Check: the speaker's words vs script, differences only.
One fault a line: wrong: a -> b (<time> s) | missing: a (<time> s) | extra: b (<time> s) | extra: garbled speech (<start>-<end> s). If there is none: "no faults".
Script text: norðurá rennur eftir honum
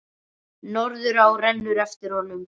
no faults